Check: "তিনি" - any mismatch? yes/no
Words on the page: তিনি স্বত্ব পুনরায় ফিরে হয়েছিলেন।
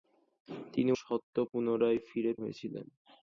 no